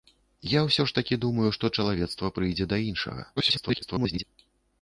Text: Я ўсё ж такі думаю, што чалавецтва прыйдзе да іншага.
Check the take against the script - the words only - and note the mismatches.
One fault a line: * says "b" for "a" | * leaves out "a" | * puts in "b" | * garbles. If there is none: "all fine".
* garbles